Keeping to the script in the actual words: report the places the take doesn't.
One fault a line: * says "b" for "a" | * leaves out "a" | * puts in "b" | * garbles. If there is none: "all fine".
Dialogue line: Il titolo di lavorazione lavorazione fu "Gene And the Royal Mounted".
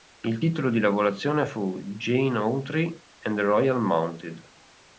* leaves out "lavorazione"
* puts in "Autry"